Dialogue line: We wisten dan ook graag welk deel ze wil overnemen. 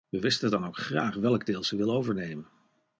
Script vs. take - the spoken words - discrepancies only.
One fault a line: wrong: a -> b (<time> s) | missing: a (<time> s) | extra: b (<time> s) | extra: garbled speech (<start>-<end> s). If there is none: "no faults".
no faults